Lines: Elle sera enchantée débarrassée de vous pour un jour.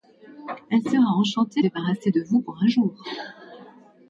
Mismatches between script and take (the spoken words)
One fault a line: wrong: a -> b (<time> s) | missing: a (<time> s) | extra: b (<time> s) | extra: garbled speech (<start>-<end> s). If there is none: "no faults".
no faults